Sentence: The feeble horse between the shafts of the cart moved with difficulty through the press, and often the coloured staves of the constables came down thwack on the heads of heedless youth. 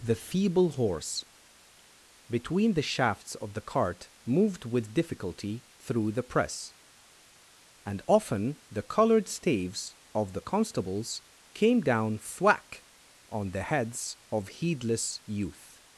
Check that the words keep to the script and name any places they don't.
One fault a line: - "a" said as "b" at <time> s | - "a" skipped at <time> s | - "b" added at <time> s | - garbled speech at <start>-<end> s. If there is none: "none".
none